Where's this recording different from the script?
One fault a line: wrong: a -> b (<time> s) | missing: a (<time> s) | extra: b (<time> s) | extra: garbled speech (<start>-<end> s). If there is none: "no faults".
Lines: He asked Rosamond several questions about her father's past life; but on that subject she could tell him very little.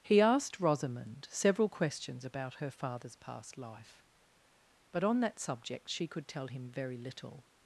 no faults